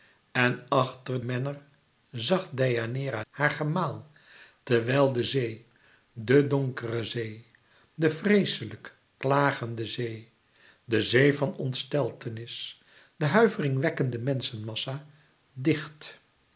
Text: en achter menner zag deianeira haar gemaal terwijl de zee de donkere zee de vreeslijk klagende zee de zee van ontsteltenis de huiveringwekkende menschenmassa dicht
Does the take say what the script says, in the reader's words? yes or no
yes